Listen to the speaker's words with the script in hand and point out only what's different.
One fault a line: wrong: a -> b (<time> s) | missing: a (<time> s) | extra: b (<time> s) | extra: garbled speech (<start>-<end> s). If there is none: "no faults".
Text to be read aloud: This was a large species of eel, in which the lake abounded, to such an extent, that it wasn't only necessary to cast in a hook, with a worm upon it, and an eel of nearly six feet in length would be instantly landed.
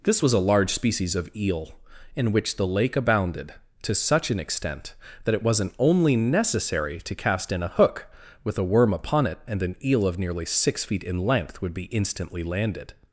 no faults